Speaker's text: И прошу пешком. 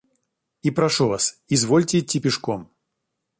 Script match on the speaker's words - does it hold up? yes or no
no